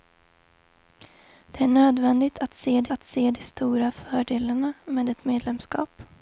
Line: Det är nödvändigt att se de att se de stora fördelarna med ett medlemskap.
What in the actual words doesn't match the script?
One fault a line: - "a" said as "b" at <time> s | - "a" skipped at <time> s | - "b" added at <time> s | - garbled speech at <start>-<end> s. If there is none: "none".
none